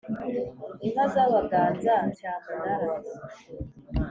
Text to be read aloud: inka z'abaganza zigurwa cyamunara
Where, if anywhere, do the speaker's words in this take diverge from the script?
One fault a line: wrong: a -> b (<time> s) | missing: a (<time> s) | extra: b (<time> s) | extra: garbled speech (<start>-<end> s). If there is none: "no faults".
missing: zigurwa (1.9 s)